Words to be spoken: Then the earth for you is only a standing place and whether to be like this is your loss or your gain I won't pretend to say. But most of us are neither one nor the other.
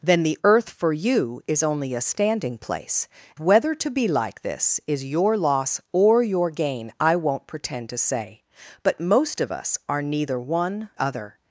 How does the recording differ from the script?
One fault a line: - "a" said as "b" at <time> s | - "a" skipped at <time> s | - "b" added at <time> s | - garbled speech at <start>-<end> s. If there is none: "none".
- "and" skipped at 3.1 s
- "nor the" skipped at 10.9 s